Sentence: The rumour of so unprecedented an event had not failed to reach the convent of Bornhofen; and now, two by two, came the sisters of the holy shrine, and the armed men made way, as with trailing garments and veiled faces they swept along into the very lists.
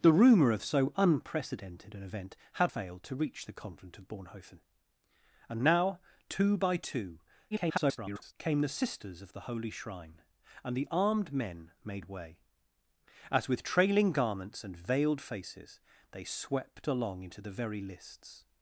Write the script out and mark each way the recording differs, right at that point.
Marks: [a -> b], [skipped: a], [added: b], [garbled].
The rumour of so unprecedented an event had [skipped: not] failed to reach the convent of Bornhofen; and now, two by two, [garbled] came the sisters of the holy shrine, and the armed men made way, as with trailing garments and veiled faces they swept along into the very lists.